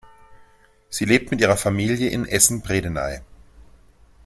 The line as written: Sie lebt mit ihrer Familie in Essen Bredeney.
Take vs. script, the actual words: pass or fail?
pass